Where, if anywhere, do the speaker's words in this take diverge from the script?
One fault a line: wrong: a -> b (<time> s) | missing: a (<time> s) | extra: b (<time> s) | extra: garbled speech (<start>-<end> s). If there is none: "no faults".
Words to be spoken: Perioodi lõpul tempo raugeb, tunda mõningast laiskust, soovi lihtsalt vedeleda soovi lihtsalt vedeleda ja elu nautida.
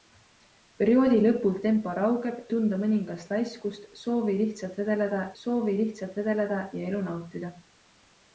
no faults